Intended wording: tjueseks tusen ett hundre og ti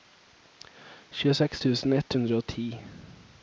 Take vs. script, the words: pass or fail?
pass